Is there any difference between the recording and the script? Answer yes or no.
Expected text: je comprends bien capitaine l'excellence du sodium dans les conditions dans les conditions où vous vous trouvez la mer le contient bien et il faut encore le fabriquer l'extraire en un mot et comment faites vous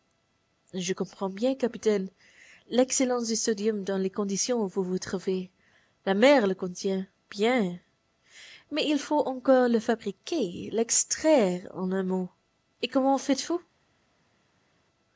yes